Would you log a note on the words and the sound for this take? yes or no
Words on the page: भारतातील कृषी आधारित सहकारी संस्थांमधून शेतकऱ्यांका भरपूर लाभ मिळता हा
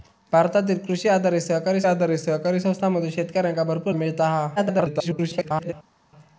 yes